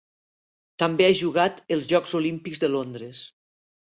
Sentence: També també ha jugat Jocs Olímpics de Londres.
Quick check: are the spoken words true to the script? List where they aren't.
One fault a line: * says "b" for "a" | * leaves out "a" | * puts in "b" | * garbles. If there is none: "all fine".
* leaves out "també"
* puts in "els"